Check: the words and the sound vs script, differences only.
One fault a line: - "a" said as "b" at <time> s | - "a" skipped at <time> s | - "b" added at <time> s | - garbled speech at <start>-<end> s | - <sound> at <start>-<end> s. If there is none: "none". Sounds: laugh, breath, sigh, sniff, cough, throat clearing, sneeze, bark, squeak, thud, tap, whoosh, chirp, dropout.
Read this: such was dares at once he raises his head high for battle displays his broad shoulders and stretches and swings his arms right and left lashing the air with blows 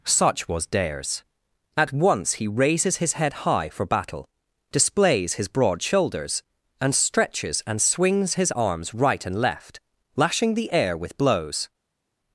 none